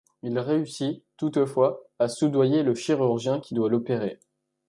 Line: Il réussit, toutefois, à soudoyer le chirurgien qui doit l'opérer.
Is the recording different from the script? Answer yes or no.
no